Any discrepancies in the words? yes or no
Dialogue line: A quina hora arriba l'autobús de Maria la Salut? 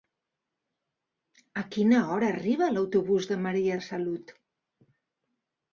no